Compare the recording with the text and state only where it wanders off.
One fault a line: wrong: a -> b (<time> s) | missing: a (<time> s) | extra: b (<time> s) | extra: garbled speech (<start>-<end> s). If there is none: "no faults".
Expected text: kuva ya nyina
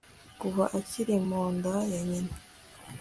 extra: akiri mu nda (0.8 s)